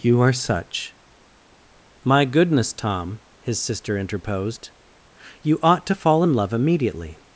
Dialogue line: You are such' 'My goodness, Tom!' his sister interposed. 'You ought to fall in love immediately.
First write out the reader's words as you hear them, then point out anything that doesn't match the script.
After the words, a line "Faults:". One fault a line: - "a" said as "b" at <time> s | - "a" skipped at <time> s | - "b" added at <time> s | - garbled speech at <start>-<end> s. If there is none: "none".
You are such' 'My goodness, Tom!' his sister interposed. 'You ought to fall in love immediately.
Faults:
none